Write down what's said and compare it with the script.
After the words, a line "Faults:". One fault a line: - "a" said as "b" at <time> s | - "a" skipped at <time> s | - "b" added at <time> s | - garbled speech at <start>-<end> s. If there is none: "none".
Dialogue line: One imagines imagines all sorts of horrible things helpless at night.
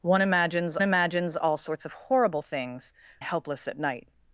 One imagines imagines all sorts of horrible things helpless at night.
Faults:
none